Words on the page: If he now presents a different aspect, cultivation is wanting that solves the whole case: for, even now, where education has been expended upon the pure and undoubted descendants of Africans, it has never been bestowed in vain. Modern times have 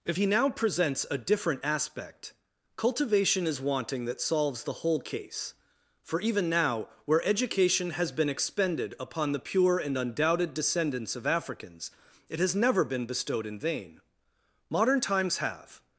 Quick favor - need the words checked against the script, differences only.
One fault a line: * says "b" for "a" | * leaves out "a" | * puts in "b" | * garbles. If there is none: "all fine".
all fine